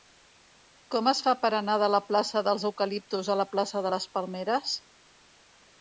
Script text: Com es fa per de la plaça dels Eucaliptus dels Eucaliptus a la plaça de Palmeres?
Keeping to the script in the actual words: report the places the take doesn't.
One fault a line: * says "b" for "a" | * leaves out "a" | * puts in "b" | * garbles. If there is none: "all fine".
* puts in "anar"
* leaves out "dels Eucaliptus"
* puts in "les"